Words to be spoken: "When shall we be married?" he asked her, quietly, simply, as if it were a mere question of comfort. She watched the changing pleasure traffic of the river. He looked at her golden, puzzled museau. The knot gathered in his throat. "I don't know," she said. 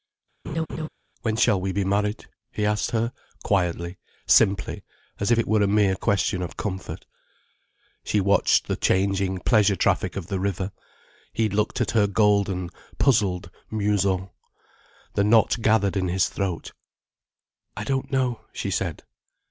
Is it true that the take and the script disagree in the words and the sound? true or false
true